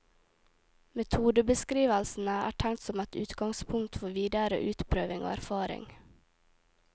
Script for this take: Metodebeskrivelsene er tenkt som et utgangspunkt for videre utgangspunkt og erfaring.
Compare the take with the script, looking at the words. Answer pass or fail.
fail